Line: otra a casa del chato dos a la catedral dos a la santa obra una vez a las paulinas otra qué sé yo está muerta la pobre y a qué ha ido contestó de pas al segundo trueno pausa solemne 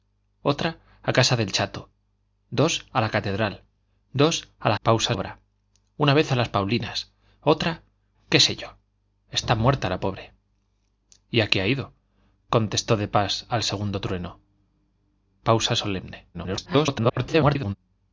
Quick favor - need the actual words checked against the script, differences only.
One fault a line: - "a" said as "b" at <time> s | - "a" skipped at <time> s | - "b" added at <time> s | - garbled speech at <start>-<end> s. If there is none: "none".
- "santa" said as "pausa" at 4.8 s
- garbled speech at 16.3-17.7 s